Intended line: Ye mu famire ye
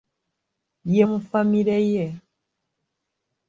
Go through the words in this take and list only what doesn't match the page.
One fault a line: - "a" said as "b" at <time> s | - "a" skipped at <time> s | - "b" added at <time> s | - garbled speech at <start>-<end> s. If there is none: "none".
none